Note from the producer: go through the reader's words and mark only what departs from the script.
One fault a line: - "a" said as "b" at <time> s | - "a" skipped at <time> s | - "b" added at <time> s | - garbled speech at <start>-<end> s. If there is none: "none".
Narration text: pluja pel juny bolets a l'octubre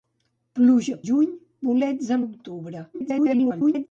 - "pel" skipped at 1.0 s
- garbled speech at 2.9-3.9 s